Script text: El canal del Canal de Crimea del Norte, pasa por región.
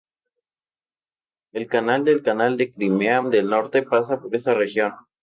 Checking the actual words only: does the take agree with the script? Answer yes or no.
no